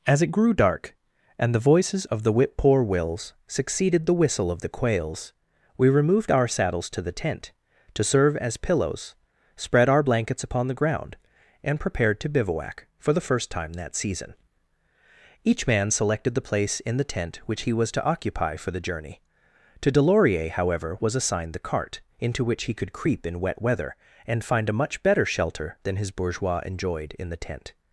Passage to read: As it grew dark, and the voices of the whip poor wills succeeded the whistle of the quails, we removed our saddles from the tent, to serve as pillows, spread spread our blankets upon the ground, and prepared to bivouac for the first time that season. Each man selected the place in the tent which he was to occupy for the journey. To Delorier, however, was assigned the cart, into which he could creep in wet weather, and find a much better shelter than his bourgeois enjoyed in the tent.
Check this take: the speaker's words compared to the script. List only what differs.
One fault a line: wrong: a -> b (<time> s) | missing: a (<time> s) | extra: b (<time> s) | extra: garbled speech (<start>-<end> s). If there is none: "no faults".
wrong: from -> to (6.9 s)
missing: spread (9.9 s)